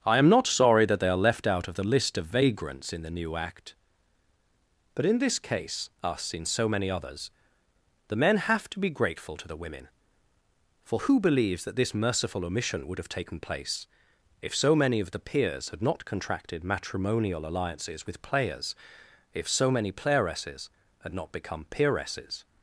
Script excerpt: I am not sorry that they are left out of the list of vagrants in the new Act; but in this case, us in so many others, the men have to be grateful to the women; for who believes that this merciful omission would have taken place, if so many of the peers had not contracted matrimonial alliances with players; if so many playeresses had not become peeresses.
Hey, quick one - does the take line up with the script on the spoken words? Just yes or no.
yes